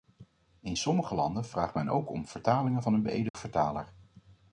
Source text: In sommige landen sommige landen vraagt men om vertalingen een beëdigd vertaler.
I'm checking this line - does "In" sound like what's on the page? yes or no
yes